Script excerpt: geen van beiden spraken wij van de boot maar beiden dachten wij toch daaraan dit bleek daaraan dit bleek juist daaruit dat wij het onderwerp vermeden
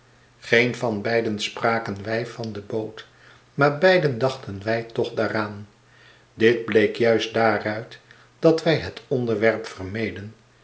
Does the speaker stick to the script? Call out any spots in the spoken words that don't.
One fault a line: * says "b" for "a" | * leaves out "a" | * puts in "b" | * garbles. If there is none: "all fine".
* leaves out "daaraan dit bleek"